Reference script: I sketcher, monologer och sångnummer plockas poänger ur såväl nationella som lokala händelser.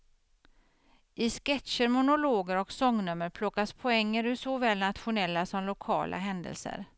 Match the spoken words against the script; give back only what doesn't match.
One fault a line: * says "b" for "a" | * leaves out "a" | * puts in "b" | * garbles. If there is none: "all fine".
all fine